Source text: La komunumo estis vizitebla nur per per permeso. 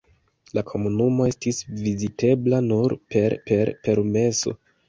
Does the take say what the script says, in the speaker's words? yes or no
yes